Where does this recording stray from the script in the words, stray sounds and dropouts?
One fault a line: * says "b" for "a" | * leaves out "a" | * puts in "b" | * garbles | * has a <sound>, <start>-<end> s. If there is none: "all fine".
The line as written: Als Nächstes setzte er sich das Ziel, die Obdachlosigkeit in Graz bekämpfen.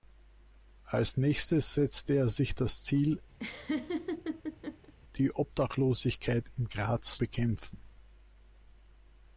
* has a laugh, 3.4-4.9 s